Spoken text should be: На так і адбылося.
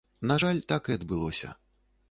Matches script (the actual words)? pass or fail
fail